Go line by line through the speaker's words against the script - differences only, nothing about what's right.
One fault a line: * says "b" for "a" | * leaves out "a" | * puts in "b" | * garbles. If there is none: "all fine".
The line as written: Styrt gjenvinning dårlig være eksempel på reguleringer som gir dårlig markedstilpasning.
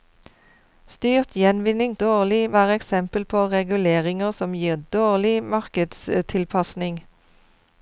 all fine